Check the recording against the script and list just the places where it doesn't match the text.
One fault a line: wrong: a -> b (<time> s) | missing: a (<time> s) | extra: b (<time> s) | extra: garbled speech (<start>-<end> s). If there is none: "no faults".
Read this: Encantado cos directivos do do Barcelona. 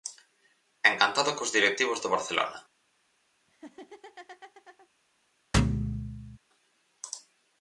missing: do (2.1 s)